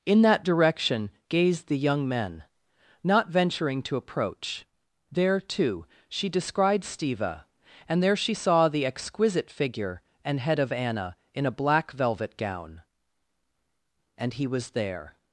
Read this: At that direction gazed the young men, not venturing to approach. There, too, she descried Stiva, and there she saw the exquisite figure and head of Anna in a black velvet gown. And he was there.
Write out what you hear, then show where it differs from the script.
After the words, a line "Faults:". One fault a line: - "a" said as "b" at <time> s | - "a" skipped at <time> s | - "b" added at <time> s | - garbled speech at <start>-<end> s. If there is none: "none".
In that direction gazed the young men, not venturing to approach. There, too, she descried Stiva, and there she saw the exquisite figure and head of Anna in a black velvet gown. And he was there.
Faults:
- "At" said as "In" at 0.1 s